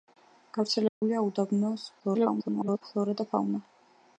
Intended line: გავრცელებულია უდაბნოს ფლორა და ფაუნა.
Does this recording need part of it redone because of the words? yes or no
yes